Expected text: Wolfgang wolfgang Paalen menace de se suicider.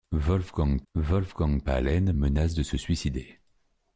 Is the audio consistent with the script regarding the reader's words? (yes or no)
yes